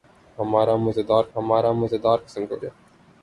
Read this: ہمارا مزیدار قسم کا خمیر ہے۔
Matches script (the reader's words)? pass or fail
fail